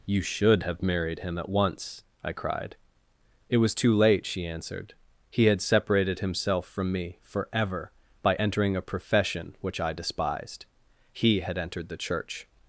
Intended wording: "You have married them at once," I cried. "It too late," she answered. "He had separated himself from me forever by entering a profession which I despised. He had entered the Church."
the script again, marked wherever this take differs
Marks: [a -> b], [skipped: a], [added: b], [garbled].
"You [added: should] have married [them -> him] at once," I cried. "It [added: was] too late," she answered. "He had separated himself from me forever by entering a profession which I despised. He had entered the Church."